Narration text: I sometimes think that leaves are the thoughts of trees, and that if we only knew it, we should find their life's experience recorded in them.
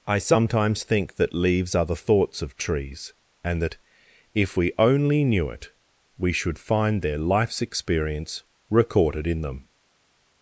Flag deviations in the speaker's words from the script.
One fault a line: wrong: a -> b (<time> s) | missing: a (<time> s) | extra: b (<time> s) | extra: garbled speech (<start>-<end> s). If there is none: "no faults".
no faults